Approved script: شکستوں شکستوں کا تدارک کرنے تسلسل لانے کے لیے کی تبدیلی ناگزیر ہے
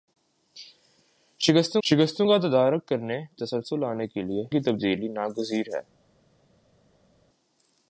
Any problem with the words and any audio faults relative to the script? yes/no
no